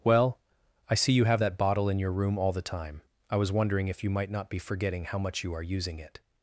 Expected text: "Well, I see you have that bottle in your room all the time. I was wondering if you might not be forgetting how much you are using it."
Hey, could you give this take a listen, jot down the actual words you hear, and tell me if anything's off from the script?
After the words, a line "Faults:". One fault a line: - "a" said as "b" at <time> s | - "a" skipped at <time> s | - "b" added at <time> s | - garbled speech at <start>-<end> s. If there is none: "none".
"Well, I see you have that bottle in your room all the time. I was wondering if you might not be forgetting how much you are using it."
Faults:
none